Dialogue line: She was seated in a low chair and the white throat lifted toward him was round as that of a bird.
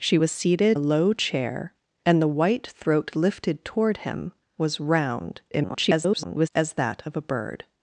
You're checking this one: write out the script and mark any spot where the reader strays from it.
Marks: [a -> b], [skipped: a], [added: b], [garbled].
She was seated [skipped: in] a low chair and the white throat lifted toward him was round [garbled] as that of a bird.